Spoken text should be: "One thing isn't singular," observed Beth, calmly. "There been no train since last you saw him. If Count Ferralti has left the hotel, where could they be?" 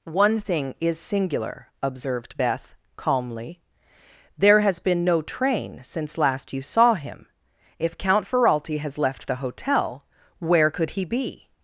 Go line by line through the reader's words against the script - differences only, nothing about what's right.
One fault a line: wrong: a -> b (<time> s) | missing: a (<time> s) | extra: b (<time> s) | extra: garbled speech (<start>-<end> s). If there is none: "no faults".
wrong: isn't -> is (0.8 s)
extra: has (4.6 s)
wrong: they -> he (10.9 s)